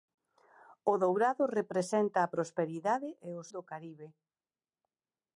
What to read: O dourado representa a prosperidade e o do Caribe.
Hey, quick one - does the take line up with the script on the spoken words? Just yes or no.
yes